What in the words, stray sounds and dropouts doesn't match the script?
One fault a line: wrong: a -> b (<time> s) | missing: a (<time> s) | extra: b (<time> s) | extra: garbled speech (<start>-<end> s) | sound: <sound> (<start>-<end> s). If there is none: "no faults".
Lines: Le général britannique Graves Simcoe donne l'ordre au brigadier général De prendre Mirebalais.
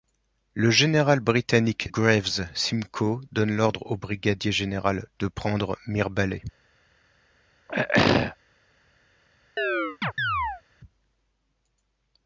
sound: throat clearing (7.7-8.4 s)
sound: chirp (9.6-10.6 s)